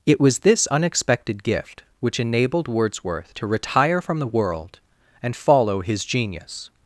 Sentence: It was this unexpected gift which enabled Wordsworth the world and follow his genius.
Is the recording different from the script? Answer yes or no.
yes